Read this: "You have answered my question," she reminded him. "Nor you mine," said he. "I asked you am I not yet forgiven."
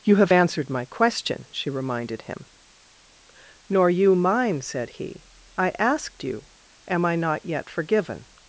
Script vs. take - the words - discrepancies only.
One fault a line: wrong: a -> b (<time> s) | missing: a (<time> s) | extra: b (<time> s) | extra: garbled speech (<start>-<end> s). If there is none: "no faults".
no faults